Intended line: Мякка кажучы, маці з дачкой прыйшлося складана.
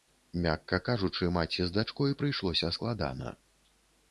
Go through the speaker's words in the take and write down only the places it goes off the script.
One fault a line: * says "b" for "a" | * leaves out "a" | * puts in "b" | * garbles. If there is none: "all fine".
all fine